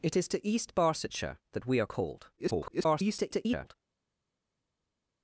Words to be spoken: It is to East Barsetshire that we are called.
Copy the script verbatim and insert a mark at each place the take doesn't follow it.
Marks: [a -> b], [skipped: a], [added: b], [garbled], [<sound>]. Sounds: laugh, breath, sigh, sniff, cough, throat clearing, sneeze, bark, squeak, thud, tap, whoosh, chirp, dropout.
It is to East Barsetshire that we are called. [garbled]